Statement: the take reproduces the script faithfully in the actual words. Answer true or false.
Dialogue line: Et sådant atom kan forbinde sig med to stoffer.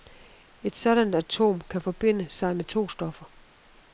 true